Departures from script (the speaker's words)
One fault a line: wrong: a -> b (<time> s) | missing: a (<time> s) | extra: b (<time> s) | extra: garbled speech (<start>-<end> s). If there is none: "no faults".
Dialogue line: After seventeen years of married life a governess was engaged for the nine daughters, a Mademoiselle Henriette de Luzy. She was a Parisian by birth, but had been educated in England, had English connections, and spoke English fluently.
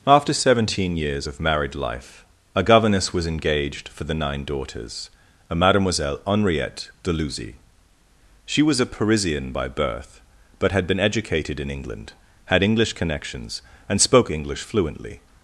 no faults